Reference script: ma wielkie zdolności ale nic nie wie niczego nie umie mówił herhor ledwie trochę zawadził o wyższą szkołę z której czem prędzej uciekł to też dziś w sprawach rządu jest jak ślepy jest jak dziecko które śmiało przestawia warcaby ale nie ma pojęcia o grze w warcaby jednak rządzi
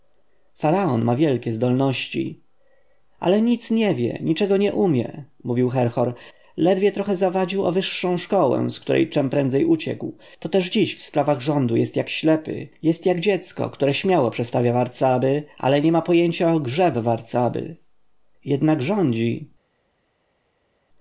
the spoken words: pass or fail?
pass